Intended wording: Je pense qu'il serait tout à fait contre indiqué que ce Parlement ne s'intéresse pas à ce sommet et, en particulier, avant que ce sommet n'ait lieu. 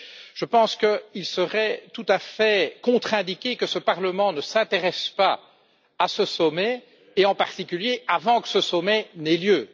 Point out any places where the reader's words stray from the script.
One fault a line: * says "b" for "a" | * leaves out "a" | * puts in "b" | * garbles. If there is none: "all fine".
all fine